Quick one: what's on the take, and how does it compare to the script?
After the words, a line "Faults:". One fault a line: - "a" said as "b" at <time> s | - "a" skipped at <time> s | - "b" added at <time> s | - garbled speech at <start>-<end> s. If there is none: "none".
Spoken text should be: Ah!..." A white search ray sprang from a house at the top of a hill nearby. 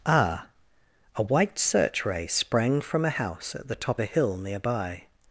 Ah!..." A white search ray sprang from a house at the top a hill nearby.
Faults:
- "of" skipped at 4.0 s